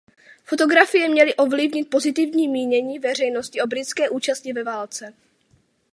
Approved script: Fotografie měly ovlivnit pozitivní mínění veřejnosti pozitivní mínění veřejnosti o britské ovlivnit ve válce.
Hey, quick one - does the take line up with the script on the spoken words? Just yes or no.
no